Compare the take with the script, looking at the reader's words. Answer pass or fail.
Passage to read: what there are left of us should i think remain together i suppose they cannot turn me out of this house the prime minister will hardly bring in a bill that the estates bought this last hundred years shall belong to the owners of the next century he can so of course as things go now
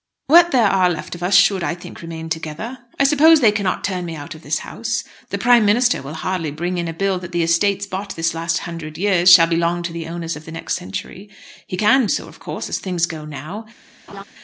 pass